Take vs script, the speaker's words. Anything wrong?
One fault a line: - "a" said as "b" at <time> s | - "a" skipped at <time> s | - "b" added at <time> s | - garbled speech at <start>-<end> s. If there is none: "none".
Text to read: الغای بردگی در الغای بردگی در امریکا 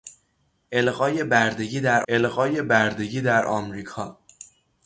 none